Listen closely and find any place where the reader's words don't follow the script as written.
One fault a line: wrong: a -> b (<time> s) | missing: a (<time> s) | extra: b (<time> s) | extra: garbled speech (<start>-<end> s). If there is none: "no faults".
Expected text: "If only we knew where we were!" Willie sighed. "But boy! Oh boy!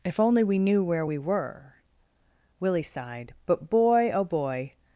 no faults